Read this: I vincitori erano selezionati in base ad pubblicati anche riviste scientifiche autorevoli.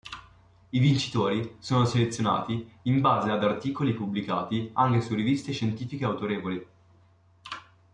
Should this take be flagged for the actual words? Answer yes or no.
yes